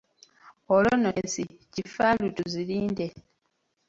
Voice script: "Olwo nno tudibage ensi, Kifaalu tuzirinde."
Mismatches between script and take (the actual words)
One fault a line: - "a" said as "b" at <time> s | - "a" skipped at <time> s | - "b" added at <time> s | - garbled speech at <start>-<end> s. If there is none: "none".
- "tudibage" skipped at 1.1 s